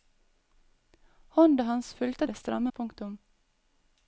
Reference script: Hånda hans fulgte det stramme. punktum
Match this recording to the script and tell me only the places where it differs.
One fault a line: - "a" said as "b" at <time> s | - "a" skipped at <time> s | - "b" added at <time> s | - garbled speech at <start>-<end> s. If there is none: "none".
none